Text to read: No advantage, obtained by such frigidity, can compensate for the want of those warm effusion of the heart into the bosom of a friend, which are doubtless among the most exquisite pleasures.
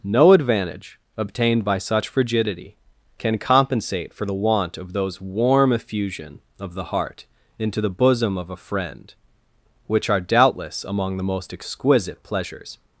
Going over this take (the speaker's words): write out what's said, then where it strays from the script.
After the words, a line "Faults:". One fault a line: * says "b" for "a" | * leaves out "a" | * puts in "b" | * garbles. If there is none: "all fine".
No advantage, obtained by such frigidity, can compensate for the want of those warm effusion of the heart into the bosom of a friend, which are doubtless among the most exquisite pleasures.
Faults:
all fine